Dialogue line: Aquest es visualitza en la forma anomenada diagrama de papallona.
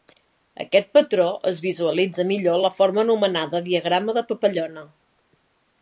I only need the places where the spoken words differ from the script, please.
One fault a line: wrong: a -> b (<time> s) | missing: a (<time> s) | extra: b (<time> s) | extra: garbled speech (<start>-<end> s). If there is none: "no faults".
extra: patró (1.0 s)
extra: millor (2.3 s)